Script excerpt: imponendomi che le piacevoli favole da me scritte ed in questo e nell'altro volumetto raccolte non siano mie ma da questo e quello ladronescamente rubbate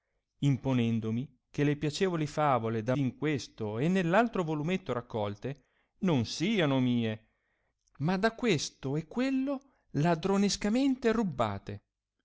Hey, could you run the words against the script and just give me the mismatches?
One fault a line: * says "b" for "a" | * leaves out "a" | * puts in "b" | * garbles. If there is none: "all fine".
* leaves out "me scritte ed"